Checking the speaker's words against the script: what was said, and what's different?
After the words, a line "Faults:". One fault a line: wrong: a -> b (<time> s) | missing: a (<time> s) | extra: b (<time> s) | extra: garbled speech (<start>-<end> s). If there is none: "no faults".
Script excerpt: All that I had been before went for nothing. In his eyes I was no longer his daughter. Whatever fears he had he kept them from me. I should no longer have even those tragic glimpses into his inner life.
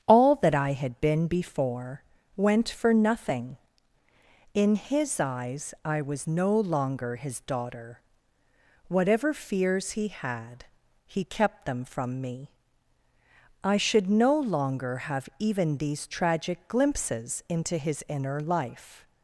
All that I had been before went for nothing. In his eyes I was no longer his daughter. Whatever fears he had he kept them from me. I should no longer have even these tragic glimpses into his inner life.
Faults:
wrong: those -> these (15.8 s)